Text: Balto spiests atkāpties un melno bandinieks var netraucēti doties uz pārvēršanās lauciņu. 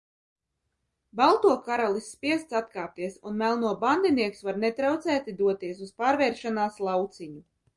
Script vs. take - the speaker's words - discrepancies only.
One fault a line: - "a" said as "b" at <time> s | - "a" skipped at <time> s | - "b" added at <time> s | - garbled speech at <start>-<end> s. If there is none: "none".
- "karalis" added at 1.7 s